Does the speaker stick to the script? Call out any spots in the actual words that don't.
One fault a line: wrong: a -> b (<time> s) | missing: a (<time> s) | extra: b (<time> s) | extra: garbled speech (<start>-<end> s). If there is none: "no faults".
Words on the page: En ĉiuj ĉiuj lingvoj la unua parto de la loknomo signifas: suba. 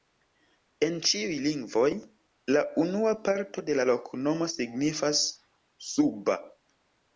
missing: ĉiuj (1.4 s)